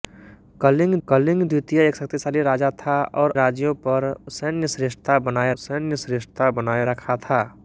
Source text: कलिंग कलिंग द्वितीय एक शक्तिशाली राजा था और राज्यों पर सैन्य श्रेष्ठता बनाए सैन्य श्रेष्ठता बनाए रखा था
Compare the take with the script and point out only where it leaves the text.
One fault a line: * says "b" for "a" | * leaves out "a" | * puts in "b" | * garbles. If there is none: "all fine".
all fine